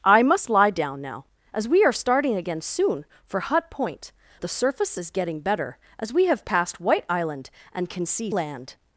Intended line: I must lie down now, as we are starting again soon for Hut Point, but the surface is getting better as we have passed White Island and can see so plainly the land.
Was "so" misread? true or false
true